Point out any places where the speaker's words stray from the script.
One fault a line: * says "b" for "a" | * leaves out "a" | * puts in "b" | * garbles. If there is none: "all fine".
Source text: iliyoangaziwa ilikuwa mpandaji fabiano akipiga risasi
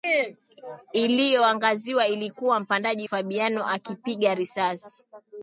all fine